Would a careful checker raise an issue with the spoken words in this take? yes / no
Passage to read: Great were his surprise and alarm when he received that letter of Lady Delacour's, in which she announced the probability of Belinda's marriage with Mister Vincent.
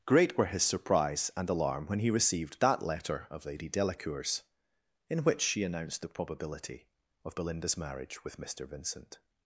no